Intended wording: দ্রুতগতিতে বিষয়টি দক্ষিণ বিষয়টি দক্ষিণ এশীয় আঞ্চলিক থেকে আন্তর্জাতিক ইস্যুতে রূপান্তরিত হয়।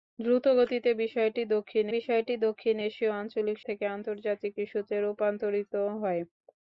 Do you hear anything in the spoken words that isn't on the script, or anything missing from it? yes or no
no